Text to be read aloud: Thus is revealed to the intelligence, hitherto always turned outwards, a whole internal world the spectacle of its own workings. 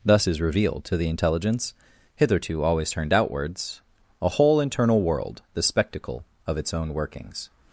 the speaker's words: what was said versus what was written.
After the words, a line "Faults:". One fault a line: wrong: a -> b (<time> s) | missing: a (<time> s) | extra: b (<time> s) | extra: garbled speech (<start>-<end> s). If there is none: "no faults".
Thus is revealed to the intelligence, hitherto always turned outwards, a whole internal world the spectacle of its own workings.
Faults:
no faults